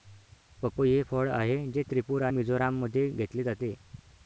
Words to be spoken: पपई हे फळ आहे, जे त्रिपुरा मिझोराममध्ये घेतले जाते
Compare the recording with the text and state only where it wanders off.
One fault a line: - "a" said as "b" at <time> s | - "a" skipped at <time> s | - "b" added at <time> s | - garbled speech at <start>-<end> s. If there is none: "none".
none